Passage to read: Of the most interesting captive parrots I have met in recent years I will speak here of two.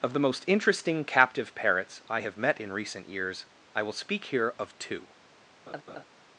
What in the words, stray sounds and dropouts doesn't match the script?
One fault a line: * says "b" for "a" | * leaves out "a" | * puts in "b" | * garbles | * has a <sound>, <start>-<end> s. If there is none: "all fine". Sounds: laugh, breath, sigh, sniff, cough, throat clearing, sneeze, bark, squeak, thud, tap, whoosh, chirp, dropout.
* has a laugh, 5.7-6.0 s